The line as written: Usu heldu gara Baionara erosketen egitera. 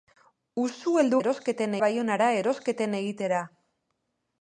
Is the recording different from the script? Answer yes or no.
yes